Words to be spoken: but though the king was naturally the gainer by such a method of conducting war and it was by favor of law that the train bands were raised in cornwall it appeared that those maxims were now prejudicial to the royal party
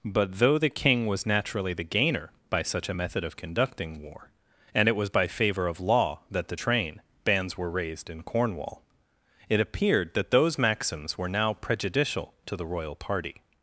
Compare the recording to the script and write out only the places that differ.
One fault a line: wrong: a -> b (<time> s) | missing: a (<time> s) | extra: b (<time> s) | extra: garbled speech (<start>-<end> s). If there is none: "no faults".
no faults